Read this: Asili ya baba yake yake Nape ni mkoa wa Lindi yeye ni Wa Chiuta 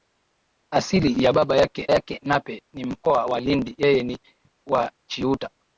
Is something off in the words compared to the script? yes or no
no